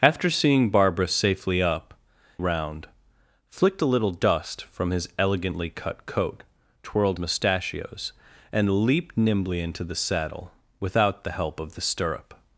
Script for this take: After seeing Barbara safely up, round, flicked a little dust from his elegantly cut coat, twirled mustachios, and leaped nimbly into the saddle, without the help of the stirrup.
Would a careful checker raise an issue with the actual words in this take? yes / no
no